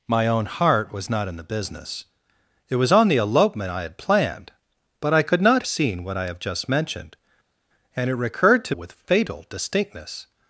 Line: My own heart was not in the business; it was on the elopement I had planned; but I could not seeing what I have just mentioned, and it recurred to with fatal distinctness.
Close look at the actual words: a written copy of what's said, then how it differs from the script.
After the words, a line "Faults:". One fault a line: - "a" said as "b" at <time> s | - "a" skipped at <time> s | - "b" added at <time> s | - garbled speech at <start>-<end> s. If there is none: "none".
My own heart was not in the business; it was on the elopement I had planned; but I could not seeing what I have just mentioned, and it recurred to with fatal distinctness.
Faults:
none